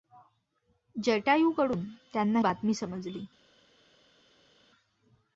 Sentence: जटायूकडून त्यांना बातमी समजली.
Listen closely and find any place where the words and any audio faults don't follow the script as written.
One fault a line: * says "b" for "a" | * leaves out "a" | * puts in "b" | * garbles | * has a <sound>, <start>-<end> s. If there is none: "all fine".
all fine